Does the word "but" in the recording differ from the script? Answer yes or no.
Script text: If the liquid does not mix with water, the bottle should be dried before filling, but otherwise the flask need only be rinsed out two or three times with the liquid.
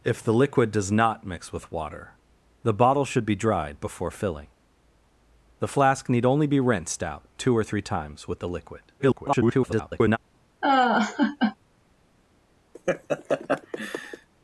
yes